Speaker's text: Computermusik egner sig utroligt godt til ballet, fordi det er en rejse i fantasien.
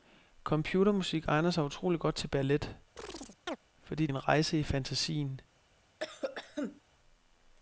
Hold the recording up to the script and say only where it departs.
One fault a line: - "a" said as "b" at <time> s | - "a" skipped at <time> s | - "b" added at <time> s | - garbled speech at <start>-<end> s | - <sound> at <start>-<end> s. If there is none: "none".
- chirp at 3.0-3.6 s
- "det" skipped at 4.1 s
- cough at 6.0-6.8 s